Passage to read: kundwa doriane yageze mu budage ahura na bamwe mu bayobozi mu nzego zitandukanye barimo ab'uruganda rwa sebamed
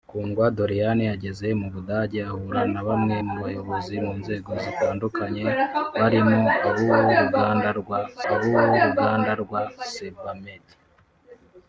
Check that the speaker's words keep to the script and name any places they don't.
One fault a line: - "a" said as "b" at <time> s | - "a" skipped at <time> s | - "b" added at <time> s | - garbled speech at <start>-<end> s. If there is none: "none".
- "ab'uruganda rwa" added at 8.3 s